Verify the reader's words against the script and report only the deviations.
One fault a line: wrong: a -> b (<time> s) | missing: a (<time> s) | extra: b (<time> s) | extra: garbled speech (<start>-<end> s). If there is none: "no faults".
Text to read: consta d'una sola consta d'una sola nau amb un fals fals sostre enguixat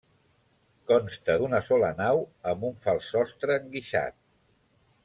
missing: consta d'una sola (1.9 s)
missing: fals (3.1 s)